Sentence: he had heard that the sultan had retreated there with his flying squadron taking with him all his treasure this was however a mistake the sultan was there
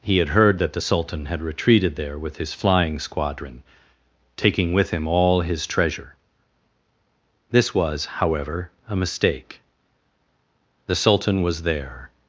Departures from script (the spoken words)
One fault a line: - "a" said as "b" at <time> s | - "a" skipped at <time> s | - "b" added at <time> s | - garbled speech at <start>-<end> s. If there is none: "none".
none